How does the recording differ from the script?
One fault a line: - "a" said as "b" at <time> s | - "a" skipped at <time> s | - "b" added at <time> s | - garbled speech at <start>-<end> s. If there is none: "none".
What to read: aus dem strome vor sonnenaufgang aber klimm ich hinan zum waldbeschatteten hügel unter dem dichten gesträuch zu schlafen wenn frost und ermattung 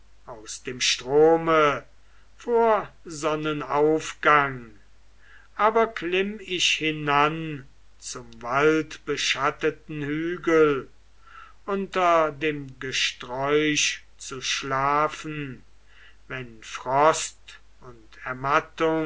- "dichten" skipped at 12.8 s